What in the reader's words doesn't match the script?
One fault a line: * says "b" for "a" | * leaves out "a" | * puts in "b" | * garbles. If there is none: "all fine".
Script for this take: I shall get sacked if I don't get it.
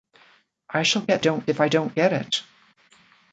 * says "don't" for "sacked"